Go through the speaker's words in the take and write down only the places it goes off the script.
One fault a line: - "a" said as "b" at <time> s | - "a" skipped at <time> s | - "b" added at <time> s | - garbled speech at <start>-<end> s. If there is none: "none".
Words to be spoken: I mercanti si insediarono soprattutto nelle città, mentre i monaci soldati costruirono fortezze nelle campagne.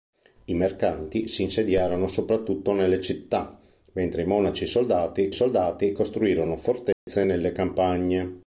- "soldati" added at 5.3 s